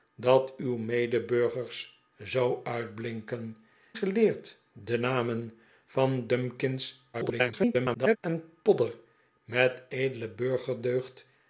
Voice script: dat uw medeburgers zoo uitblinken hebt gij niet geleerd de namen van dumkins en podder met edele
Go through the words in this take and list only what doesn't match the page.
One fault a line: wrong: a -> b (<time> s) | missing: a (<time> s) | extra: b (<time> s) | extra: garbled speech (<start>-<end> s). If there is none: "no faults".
missing: hebt gij niet (3.6 s)
extra: garbled speech (7.1-8.2 s)